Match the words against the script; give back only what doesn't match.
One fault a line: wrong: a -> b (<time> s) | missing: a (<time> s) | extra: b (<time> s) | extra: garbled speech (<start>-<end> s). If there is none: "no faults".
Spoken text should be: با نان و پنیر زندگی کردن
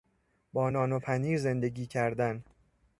no faults